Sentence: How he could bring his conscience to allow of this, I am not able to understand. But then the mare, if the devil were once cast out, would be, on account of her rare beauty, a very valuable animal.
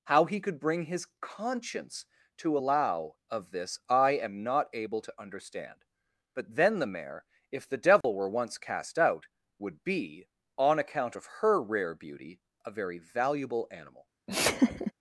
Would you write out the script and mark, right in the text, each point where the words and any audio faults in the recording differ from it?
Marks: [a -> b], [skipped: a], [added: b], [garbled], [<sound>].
How he could bring his conscience to allow of this, I am not able to understand. But then the mare, if the devil [dropout] were once cast out, would be, on account of her rare beauty, a very valuable animal. [laugh]